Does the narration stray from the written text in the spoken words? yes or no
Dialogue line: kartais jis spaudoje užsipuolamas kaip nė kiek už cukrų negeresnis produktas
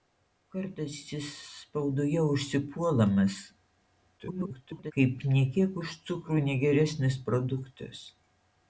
yes